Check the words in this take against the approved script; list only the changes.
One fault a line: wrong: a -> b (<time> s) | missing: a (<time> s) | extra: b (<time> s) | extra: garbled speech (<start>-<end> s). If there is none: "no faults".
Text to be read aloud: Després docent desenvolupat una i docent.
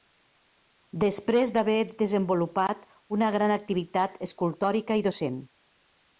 wrong: docent -> d'haver (1.6 s)
extra: gran activitat escultòrica (3.4 s)